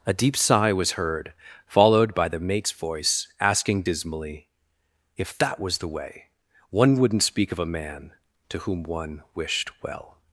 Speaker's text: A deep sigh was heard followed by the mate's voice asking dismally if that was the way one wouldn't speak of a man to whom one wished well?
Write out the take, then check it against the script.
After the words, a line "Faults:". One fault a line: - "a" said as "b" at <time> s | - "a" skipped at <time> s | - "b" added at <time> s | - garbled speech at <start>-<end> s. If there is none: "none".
A deep sigh was heard followed by the mate's voice asking dismally if that was the way one wouldn't speak of a man to whom one wished well?
Faults:
none